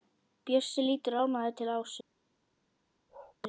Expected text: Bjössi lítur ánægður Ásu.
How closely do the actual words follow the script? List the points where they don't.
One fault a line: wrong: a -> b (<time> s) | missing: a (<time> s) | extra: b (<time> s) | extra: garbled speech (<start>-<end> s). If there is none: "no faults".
extra: til (1.6 s)